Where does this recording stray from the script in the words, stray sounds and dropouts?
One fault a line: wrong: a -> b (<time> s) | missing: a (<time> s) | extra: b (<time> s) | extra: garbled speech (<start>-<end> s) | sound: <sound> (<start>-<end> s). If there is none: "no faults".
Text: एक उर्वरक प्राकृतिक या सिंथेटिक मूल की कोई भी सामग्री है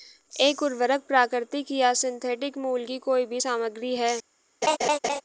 sound: laugh (4.6-5.2 s)